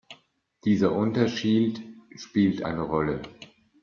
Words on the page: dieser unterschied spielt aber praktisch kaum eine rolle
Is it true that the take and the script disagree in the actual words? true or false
true